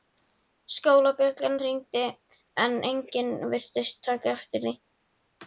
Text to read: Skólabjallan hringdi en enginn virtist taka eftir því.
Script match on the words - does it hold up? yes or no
yes